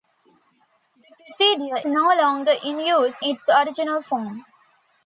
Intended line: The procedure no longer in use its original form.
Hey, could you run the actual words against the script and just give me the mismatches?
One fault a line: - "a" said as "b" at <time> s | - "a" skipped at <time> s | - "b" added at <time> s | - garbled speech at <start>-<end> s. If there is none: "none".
none